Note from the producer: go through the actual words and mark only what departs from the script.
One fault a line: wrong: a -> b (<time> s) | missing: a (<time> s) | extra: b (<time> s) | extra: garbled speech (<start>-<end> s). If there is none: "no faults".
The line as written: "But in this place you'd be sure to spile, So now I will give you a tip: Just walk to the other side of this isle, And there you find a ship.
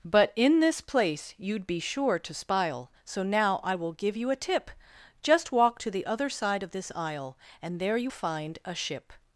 no faults